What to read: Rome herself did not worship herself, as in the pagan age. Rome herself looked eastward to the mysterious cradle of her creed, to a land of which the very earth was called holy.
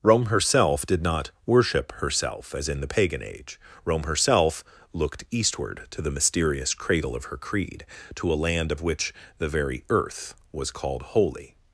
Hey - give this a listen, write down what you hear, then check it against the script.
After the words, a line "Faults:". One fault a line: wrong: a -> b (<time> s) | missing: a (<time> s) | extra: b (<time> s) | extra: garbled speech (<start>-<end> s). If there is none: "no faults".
Rome herself did not worship herself, as in the pagan age. Rome herself looked eastward to the mysterious cradle of her creed, to a land of which the very earth was called holy.
Faults:
no faults